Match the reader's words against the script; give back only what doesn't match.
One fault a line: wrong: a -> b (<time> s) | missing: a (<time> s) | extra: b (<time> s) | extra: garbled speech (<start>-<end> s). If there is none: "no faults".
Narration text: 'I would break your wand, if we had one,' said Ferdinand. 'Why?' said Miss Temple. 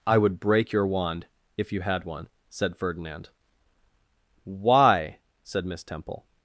wrong: we -> you (1.7 s)